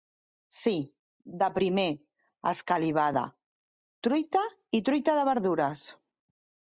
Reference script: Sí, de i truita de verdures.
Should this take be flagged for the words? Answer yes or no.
yes